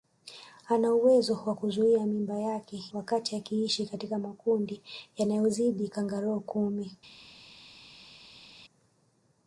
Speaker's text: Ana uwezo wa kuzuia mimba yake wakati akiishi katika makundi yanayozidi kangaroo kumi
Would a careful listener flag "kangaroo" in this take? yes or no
no